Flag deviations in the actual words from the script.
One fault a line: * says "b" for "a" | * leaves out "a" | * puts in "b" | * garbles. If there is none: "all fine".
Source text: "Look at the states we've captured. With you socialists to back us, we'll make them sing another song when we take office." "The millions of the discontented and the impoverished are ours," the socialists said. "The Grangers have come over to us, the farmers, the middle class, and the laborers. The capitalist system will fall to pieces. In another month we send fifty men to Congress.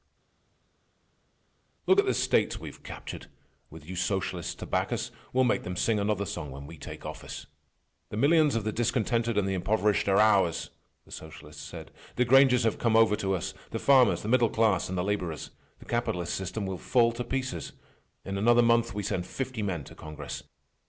all fine